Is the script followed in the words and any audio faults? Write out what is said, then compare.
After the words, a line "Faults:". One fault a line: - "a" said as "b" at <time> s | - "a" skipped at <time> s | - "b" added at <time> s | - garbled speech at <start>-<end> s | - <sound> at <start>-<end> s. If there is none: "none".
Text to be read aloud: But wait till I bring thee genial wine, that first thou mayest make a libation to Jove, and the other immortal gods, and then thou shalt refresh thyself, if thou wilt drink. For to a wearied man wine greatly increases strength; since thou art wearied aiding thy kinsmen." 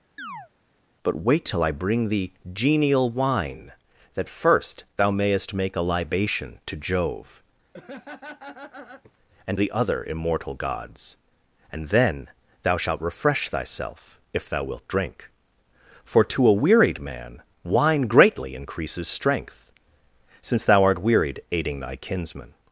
But wait till I bring thee genial wine, that first thou mayest make a libation to Jove, and the other immortal gods, and then thou shalt refresh thyself, if thou wilt drink. For to a wearied man wine greatly increases strength; since thou art wearied aiding thy kinsmen."
Faults:
- chirp at 0.2-0.5 s
- laugh at 7.7-9.2 s